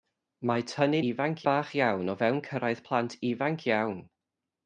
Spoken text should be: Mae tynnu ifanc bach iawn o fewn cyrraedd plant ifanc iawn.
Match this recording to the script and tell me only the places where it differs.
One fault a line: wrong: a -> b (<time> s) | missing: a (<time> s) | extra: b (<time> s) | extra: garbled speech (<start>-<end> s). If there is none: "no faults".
no faults